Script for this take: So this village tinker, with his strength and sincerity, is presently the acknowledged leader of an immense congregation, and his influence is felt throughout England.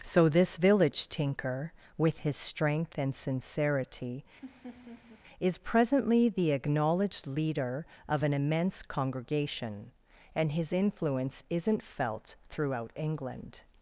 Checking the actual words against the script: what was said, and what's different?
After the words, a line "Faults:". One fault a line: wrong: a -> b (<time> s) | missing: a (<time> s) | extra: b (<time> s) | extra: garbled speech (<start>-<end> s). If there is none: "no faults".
So this village tinker, with his strength and sincerity, is presently the acknowledged leader of an immense congregation, and his influence isn't felt throughout England.
Faults:
wrong: is -> isn't (11.5 s)